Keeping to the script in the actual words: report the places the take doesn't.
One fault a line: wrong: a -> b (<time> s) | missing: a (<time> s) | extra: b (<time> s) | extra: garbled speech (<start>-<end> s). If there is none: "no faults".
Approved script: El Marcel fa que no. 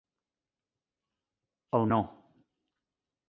missing: Marcel fa que (1.9 s)